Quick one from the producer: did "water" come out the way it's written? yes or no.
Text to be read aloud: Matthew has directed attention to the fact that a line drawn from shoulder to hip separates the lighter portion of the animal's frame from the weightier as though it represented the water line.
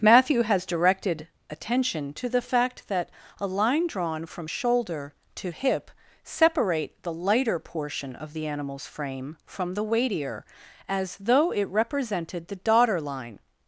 no